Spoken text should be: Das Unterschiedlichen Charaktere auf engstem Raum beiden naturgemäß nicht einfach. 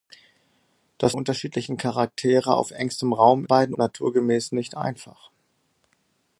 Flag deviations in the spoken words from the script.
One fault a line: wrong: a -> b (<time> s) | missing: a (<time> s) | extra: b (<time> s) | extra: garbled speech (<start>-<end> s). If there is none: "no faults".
no faults